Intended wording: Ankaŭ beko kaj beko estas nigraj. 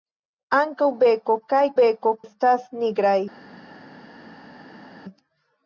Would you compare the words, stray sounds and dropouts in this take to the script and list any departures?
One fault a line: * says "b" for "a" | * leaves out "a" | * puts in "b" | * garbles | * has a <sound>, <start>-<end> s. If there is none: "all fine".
all fine